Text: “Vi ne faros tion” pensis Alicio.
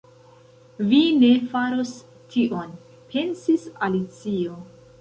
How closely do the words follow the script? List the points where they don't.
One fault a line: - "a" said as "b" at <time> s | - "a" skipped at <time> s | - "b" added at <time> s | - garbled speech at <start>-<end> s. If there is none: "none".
none